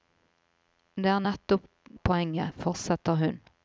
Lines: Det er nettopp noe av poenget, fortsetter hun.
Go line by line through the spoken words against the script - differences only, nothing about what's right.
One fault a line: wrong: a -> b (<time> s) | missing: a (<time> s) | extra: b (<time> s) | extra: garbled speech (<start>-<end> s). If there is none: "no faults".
missing: noe (1.7 s)